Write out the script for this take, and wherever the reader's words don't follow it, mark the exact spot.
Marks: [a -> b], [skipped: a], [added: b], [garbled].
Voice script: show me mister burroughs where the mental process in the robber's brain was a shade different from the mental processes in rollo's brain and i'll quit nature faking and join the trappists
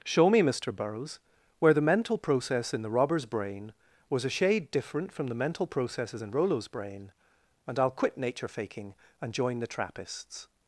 show me mister burroughs where the mental process in the robber's brain was a shade different from the mental processes in rollo's brain and i'll quit nature faking and join the trappists